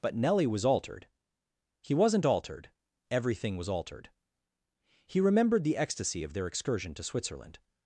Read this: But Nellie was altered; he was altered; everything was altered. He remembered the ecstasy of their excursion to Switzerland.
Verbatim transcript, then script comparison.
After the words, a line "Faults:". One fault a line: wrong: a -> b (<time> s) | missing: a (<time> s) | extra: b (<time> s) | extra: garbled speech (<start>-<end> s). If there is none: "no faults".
But Nellie was altered; he wasn't altered; everything was altered. He remembered the ecstasy of their excursion to Switzerland.
Faults:
wrong: was -> wasn't (1.9 s)